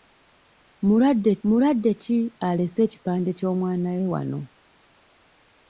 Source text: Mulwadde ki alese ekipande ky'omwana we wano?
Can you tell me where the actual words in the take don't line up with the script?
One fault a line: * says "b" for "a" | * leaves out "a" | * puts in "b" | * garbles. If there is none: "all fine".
* puts in "mulwadde"